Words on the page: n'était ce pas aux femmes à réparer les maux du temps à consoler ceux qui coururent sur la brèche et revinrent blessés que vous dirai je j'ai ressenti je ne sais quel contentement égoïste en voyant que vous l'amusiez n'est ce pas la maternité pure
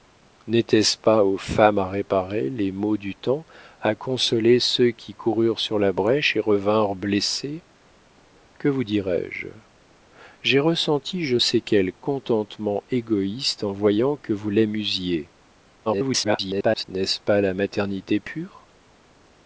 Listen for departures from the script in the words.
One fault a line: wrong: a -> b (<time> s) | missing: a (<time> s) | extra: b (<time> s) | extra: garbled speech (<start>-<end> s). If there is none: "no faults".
missing: ne (11.4 s)
extra: garbled speech (15.9-16.8 s)